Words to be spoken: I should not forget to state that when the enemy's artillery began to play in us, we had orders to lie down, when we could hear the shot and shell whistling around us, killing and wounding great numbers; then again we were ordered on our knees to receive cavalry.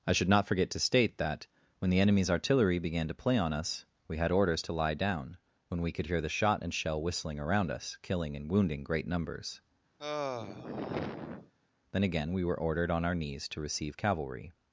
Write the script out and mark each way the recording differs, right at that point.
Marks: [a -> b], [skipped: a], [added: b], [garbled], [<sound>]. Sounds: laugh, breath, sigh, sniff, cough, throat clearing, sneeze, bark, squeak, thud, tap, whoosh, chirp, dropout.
I should not forget to state that when the enemy's artillery began to play [in -> on] us, we had orders to lie down, when we could hear the shot and shell whistling around us, killing and wounding great numbers; [sigh] then again we were ordered on our knees to receive cavalry.